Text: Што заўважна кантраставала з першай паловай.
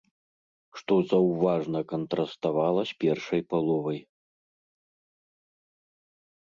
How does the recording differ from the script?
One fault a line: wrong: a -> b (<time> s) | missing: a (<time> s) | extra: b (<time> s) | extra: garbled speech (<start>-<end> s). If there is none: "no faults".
no faults